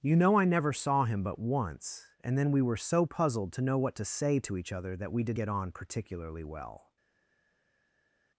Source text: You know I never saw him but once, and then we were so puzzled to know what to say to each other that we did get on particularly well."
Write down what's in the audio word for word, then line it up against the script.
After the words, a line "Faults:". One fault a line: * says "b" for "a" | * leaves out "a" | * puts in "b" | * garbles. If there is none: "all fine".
You know I never saw him but once, and then we were so puzzled to know what to say to each other that we did get on particularly well."
Faults:
all fine